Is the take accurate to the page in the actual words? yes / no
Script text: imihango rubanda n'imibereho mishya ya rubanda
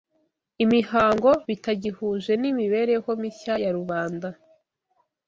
no